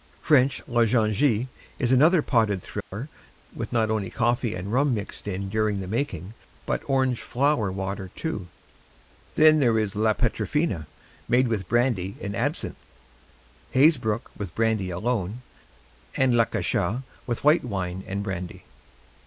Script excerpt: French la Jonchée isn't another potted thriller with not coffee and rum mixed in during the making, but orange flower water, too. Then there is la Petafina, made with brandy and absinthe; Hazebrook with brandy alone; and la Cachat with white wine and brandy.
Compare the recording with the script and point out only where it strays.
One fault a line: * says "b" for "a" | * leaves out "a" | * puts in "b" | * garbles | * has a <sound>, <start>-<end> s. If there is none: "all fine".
* says "is" for "isn't"
* has a dropout, 2.8-2.9 s
* puts in "only"